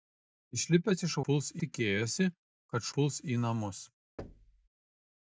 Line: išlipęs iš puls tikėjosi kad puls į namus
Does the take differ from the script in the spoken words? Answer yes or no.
no